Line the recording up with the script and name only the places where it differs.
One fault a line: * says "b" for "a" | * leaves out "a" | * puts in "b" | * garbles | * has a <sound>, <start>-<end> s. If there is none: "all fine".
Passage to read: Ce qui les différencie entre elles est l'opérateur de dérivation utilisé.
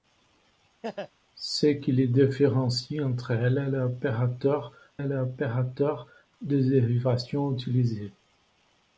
* has a laugh, 0.8-1.1 s
* puts in "est l'opérateur"